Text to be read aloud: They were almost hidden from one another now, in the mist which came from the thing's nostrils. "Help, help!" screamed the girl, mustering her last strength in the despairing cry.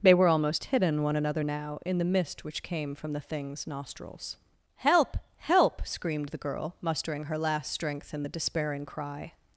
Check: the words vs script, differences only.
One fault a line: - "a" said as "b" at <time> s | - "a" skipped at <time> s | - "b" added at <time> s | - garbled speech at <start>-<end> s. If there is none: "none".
- "from" skipped at 1.0 s